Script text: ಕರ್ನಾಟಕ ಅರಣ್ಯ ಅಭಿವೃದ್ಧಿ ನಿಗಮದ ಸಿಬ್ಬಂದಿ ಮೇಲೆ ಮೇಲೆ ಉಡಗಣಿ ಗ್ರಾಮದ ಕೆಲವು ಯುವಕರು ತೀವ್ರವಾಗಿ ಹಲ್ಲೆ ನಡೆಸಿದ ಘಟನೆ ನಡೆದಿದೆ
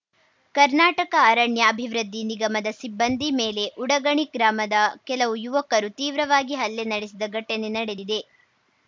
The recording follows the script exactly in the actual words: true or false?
false